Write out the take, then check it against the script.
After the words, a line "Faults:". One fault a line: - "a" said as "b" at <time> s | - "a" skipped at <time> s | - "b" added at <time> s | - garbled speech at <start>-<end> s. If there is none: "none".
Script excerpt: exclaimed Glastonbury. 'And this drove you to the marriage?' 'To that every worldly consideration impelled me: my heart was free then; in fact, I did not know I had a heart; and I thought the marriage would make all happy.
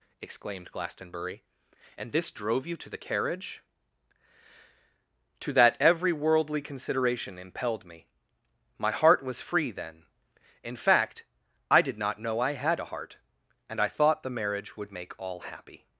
exclaimed Glastonbury. 'And this drove you to the carriage?' 'To that every worldly consideration impelled me: my heart was free then; in fact, I did not know I had a heart; and I thought the marriage would make all happy.
Faults:
- "marriage" said as "carriage" at 3.0 s